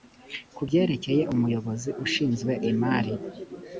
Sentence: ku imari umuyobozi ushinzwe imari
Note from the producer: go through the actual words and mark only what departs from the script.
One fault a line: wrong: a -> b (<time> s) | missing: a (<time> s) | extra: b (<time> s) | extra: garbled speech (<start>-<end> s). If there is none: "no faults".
wrong: imari -> byerekeye (0.7 s)